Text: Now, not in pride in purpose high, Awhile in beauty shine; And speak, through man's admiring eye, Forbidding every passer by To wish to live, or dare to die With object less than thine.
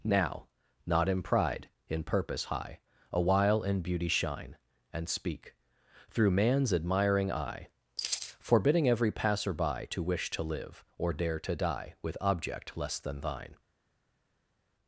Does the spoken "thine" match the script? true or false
true